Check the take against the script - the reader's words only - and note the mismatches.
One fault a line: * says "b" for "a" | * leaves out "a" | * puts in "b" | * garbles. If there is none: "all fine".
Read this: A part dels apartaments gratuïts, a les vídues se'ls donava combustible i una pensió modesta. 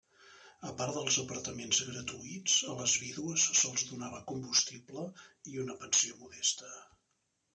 all fine